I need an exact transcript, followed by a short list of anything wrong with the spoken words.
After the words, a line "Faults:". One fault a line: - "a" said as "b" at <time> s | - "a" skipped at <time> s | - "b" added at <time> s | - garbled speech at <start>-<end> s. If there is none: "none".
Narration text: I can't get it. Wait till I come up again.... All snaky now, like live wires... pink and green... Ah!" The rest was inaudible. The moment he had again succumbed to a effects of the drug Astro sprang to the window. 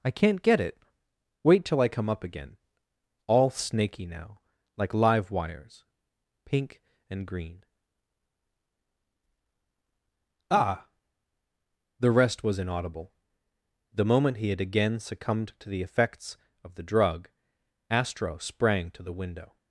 I can't get it. Wait till I come up again.... All snaky now, like live wires... pink and green... Ah!" The rest was inaudible. The moment he had again succumbed to the effects of the drug Astro sprang to the window.
Faults:
- "a" said as "the" at 15.7 s